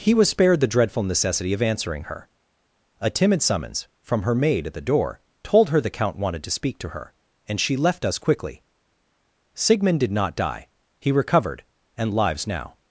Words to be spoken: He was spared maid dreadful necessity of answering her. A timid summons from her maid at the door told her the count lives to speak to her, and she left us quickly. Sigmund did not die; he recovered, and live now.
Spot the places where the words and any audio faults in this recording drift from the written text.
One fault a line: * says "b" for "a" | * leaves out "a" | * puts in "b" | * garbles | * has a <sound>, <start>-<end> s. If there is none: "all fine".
* says "the" for "maid"
* says "wanted" for "lives"
* says "lives" for "live"